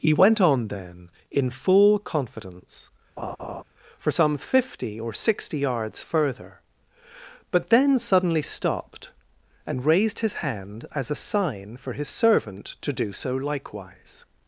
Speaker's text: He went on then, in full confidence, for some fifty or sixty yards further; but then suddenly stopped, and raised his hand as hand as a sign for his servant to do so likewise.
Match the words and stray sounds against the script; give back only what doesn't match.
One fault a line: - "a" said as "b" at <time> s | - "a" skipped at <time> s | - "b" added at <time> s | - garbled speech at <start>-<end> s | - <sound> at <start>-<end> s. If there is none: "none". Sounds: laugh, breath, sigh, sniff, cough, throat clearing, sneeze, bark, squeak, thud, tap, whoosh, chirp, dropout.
- laugh at 3.2-3.6 s
- "hand as" skipped at 11.1 s